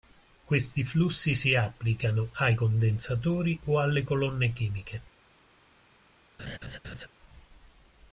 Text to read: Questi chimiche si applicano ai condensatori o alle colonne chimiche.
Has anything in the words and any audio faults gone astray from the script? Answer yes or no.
yes